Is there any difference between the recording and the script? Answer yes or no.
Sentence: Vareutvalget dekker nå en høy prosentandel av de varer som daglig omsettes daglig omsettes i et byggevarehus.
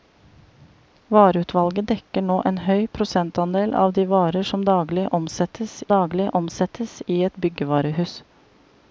no